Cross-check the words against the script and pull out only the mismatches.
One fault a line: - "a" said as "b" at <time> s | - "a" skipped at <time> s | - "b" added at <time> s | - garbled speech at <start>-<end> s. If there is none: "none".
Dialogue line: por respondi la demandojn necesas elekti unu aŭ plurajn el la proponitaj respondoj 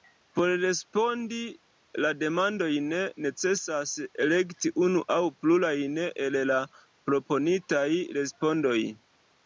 none